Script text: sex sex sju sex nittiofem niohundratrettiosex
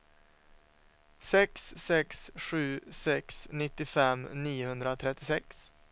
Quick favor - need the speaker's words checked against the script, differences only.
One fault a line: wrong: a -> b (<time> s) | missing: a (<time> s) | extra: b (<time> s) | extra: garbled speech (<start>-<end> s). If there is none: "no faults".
no faults